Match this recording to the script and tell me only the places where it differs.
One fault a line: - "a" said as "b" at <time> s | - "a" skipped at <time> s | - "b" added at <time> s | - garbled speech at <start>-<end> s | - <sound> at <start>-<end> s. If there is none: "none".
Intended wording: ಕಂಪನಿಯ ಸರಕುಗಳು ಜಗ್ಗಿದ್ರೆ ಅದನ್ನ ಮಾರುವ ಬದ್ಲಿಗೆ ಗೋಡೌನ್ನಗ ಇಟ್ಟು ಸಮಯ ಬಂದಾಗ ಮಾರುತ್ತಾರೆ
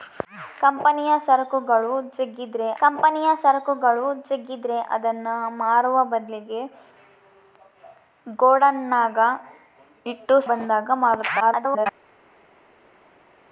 - "ಕಂಪನಿಯ ಸರಕುಗಳು ಜಗ್ಗಿದ್ರೆ" added at 2.8 s
- "ಸಮಯ" skipped at 10.4 s
- garbled speech at 11.4-11.9 s